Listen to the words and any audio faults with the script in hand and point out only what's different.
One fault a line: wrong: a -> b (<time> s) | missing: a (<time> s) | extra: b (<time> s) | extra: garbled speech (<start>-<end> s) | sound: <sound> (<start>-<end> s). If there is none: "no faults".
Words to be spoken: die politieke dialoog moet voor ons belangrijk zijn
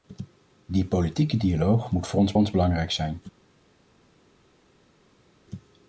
extra: ons (2.4 s)